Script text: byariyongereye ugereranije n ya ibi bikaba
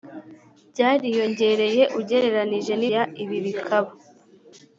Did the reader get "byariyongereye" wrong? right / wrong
right